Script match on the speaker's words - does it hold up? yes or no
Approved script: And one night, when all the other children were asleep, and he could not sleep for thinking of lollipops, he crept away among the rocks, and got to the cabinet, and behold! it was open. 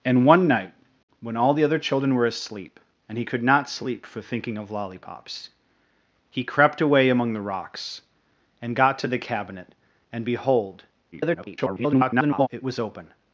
no